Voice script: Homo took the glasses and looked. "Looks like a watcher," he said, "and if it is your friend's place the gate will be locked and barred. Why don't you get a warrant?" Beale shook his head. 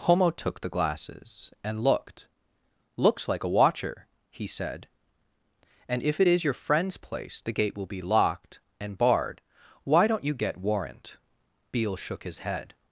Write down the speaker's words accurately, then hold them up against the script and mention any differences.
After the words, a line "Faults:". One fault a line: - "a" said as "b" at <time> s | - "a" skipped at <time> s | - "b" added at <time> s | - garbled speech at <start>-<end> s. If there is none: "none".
Homo took the glasses and looked. "Looks like a watcher," he said, "and if it is your friend's place the gate will be locked and barred. Why don't you get warrant?" Beale shook his head.
Faults:
- "a" skipped at 10.6 s